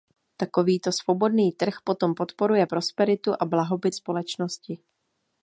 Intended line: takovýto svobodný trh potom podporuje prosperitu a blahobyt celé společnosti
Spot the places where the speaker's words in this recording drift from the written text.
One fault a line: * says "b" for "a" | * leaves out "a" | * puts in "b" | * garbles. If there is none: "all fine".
* leaves out "celé"